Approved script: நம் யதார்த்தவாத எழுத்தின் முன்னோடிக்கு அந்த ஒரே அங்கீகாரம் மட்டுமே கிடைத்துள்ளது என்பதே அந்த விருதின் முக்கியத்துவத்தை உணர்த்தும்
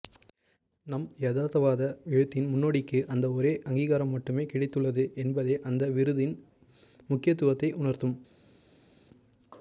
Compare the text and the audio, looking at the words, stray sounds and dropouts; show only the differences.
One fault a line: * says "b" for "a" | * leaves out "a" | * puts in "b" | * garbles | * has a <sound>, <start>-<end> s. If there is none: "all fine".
all fine